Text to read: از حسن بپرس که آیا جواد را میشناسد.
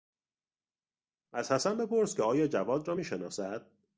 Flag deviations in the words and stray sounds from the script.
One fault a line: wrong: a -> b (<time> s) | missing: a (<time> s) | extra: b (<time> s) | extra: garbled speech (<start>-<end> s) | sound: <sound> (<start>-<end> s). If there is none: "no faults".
no faults